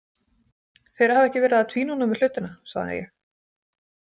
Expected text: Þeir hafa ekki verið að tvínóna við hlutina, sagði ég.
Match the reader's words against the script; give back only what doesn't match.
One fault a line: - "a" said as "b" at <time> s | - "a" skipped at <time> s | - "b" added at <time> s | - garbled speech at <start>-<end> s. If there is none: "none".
none